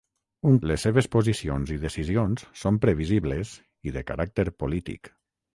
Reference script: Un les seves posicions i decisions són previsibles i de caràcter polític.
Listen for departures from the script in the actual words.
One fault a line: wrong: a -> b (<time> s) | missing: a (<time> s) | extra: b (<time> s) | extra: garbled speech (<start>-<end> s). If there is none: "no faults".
no faults